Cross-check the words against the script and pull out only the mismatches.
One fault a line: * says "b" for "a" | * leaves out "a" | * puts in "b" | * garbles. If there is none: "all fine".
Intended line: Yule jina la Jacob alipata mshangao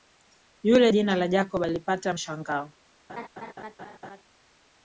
all fine